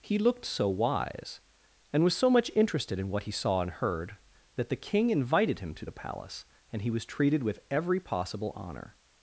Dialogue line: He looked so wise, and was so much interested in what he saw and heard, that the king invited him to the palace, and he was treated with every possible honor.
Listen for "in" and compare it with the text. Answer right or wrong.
right